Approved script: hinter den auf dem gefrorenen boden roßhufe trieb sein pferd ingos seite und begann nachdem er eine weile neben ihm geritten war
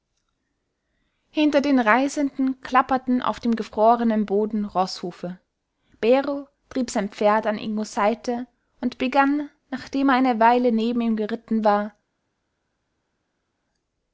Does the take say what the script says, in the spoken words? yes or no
no